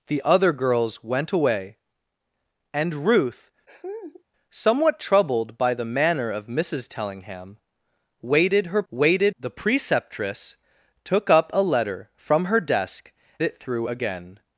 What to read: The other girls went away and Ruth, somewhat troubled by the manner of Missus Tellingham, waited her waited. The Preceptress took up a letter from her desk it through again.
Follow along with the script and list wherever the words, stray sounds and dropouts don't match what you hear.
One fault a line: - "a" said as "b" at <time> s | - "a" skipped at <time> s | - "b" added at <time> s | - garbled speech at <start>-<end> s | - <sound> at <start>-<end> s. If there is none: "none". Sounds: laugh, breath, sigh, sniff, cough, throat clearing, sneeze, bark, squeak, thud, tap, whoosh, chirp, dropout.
- laugh at 3.7-4.2 s